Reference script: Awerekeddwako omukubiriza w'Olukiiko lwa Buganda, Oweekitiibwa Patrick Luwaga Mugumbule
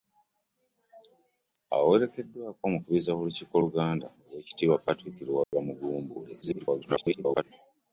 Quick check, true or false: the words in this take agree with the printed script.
false